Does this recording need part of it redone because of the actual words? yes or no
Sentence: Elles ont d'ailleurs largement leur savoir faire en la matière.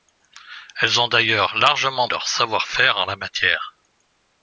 no